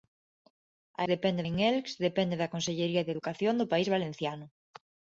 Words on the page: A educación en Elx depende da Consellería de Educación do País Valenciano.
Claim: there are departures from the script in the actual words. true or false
true